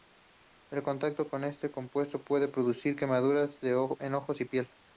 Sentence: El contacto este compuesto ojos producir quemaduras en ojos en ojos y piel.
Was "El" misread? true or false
false